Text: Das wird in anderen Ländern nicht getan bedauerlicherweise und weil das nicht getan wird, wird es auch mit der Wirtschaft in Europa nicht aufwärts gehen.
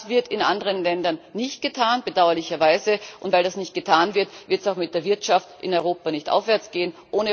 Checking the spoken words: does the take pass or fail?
pass